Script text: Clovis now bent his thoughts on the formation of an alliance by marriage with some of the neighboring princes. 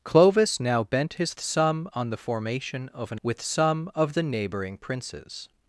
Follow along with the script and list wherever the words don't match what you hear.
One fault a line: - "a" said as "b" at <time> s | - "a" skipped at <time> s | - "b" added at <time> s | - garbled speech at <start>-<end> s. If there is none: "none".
- "thoughts" said as "some" at 1.4 s
- "alliance by marriage" skipped at 3.2 s